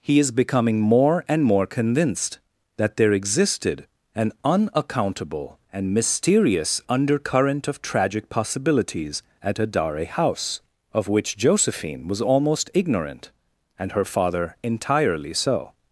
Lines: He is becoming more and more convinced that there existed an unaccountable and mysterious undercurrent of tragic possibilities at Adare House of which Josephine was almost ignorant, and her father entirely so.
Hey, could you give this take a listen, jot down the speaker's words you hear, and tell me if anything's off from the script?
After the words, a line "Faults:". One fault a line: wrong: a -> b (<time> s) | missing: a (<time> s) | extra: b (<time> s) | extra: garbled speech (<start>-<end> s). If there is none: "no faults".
He is becoming more and more convinced that there existed an unaccountable and mysterious undercurrent of tragic possibilities at Adare House of which Josephine was almost ignorant, and her father entirely so.
Faults:
no faults